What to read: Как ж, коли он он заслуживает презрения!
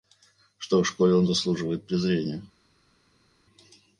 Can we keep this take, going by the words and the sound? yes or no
no